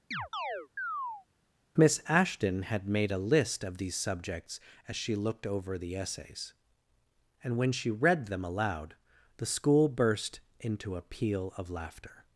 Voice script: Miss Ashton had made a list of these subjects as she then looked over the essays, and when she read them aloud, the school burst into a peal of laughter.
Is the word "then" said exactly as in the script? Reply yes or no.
no